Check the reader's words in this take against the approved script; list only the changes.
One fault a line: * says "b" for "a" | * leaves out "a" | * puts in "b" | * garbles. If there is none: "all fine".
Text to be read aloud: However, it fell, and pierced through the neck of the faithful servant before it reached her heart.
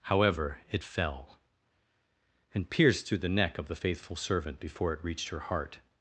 all fine